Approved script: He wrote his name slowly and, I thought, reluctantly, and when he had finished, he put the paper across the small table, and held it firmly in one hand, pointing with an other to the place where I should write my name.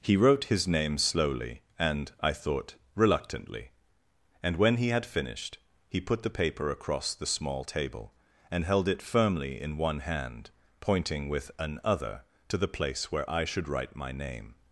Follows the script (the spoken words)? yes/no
yes